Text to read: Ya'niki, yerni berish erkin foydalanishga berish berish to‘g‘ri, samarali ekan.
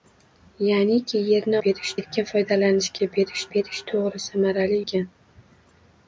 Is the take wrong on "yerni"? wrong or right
right